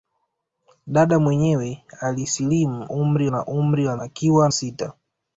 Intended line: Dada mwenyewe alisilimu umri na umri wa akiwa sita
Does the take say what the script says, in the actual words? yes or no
yes